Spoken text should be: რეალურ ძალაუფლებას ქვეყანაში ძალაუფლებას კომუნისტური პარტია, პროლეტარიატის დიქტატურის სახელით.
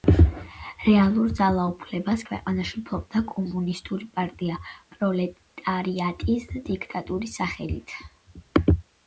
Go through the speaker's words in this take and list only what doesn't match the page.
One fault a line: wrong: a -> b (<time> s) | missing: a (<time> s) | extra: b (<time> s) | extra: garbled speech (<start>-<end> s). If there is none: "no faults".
wrong: ძალაუფლებას -> ფლობდა (2.9 s)